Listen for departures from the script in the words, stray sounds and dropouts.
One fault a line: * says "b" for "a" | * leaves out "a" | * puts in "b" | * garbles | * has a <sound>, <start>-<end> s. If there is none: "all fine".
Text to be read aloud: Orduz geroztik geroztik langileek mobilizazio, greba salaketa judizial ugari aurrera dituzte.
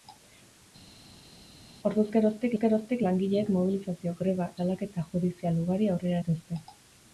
all fine